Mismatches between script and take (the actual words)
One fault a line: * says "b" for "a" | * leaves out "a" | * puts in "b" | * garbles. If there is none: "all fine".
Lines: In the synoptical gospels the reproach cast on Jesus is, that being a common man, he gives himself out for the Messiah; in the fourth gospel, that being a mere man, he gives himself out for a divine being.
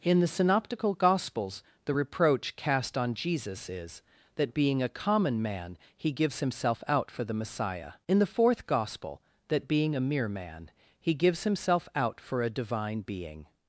all fine